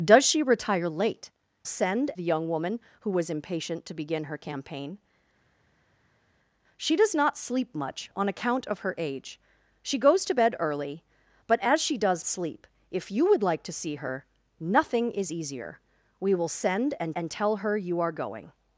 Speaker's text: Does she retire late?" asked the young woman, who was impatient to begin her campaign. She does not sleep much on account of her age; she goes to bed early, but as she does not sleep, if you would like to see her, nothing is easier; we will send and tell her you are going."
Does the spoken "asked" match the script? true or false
false